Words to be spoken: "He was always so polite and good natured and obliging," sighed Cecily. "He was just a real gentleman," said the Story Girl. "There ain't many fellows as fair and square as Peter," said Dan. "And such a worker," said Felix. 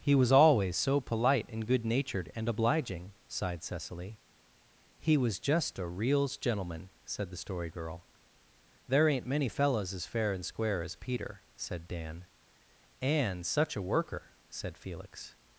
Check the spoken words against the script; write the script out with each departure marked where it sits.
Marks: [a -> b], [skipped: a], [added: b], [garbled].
"He was always so polite and good natured and obliging," sighed Cecily. "He was just a [real -> reals] gentleman," said the Story Girl. "There ain't many fellows as fair and square as Peter," said Dan. "And such a worker," said Felix.